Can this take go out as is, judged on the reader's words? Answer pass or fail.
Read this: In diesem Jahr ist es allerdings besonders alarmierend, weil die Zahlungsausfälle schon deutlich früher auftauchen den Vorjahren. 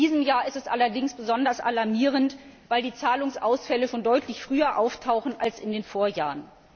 fail